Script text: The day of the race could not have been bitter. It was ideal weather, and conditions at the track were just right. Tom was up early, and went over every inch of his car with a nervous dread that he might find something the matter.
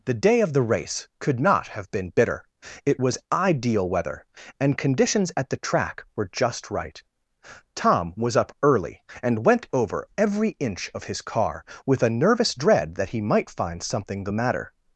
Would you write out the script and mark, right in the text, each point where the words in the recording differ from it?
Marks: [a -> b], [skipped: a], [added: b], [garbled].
The day of the race could not have been bitter. It was ideal weather, and conditions at the track were just right. Tom was up early, and went over every inch of his car with a nervous dread that he might find something the matter.